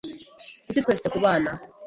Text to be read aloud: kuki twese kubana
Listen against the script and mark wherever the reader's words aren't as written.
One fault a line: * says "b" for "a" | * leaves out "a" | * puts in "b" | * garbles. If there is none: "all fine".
all fine